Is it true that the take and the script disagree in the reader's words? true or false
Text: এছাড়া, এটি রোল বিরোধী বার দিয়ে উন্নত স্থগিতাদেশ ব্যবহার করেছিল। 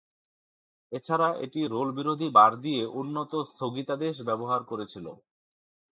false